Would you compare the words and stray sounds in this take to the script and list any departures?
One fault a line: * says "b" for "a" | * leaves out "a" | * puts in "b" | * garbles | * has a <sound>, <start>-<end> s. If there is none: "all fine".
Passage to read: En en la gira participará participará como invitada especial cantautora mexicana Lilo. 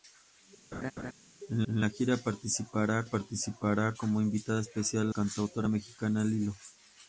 * has a laugh, 0.7-1.1 s